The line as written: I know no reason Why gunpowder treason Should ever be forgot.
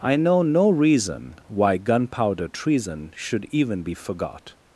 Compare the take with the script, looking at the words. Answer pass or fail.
fail